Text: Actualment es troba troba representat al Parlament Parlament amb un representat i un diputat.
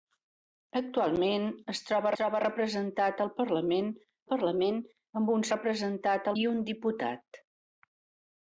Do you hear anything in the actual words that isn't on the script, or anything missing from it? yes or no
no